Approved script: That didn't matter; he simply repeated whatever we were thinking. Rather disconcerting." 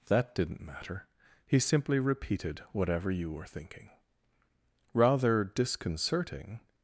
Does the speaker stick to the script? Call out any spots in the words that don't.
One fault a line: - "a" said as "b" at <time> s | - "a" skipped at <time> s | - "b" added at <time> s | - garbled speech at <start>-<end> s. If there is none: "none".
- "we" said as "you" at 3.1 s